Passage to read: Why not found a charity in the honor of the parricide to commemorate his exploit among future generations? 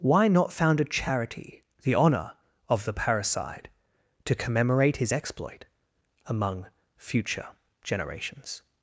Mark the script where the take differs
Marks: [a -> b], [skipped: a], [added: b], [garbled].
Why not found a charity [skipped: in] the honor of the parricide to commemorate his exploit among future generations?